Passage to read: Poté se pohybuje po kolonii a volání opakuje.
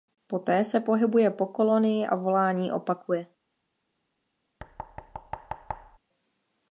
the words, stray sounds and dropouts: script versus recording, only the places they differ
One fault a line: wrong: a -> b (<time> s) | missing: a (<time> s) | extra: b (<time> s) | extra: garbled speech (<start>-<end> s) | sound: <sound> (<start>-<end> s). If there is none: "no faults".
sound: thud (4.6-6.0 s)